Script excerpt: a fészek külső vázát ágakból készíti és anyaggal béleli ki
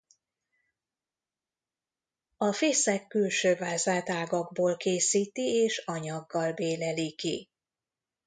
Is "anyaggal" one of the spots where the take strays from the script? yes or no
no